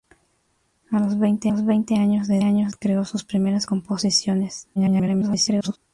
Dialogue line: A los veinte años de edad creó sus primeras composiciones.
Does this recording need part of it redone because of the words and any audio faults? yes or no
yes